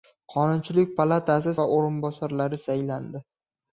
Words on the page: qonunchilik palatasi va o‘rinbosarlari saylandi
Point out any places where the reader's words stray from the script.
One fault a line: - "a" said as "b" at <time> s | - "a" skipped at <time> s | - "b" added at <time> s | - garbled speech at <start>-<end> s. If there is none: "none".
none